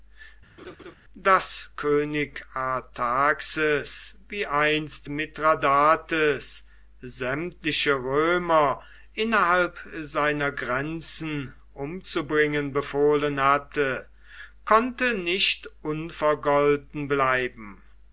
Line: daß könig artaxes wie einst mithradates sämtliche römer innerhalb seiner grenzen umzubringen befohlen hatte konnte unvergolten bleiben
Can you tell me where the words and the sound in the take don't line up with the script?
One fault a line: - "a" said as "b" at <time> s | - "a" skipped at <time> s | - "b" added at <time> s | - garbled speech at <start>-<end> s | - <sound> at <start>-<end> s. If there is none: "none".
- laugh at 0.6-1.0 s
- "nicht" added at 15.1 s